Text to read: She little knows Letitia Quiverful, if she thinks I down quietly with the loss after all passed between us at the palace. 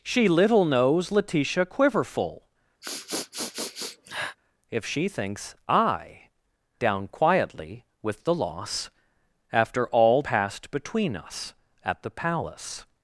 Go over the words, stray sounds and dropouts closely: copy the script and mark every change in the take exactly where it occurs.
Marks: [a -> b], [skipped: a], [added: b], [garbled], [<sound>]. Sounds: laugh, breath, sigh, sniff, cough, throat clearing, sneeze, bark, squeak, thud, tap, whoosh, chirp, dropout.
She little knows Letitia Quiverful, [sniff] if she thinks I down quietly with the loss after all passed between us at the palace.